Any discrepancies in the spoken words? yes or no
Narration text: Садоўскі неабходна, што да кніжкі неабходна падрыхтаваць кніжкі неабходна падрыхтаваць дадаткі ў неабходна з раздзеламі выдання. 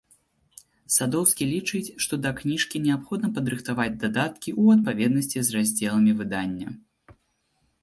yes